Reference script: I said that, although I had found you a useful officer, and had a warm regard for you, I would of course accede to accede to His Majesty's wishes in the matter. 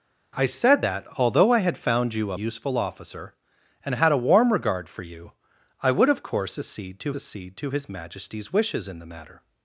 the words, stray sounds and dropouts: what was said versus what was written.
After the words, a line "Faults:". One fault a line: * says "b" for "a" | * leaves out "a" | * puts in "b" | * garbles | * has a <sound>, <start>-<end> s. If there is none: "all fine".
I said that, although I had found you a useful officer, and had a warm regard for you, I would of course accede to accede to His Majesty's wishes in the matter.
Faults:
all fine